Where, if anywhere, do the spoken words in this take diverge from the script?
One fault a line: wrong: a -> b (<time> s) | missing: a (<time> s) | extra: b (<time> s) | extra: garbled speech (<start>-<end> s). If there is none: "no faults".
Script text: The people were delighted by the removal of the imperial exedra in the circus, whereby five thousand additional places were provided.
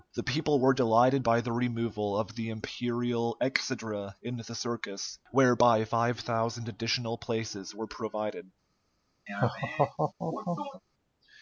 no faults